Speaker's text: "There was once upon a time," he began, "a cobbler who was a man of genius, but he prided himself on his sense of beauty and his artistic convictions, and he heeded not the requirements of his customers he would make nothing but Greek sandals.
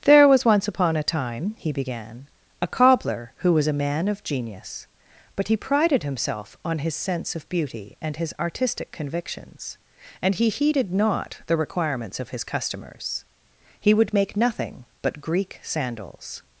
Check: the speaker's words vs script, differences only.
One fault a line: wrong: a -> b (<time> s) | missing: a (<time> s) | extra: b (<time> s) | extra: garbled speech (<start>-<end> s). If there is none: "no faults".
no faults